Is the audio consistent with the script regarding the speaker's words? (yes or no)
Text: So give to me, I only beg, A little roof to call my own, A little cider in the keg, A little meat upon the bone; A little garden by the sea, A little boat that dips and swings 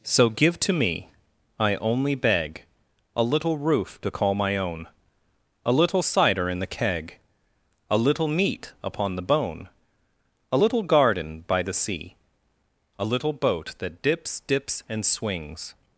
no